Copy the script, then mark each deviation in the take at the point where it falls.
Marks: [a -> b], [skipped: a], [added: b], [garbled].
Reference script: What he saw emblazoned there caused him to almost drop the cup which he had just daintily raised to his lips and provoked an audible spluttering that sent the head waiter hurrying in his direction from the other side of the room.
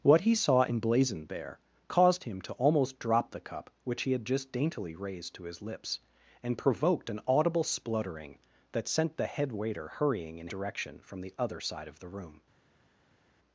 What he saw emblazoned there caused him to almost drop the cup which he had just daintily raised to his lips and provoked an audible spluttering that sent the head waiter hurrying in [skipped: his] direction from the other side of the room.